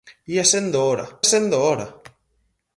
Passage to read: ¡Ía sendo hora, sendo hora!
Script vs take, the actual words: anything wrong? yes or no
no